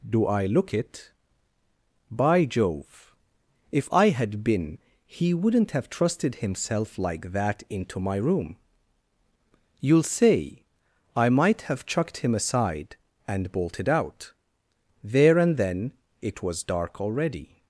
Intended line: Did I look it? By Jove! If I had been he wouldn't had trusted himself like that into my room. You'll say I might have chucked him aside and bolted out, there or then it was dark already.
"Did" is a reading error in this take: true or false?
true